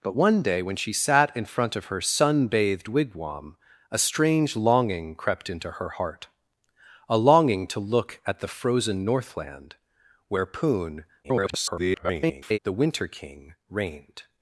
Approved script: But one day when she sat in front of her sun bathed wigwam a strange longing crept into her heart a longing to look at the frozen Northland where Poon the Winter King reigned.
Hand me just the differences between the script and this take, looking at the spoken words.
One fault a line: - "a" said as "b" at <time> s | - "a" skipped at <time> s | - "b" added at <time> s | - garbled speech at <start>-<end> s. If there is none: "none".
- garbled speech at 11.2-12.6 s